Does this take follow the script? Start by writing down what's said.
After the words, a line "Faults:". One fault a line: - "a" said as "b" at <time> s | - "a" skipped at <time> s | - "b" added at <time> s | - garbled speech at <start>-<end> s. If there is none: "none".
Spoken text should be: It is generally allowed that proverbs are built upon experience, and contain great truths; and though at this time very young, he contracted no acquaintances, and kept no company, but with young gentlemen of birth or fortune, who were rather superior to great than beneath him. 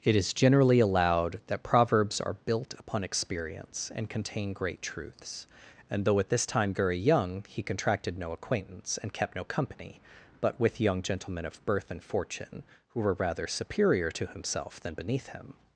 It is generally allowed that proverbs are built upon experience, and contain great truths; and though at this time very young, he contracted no acquaintance, and kept no company, but with young gentlemen of birth and fortune, who were rather superior to himself than beneath him.
Faults:
- "acquaintances" said as "acquaintance" at 8.3 s
- "or" said as "and" at 11.9 s
- "great" said as "himself" at 14.2 s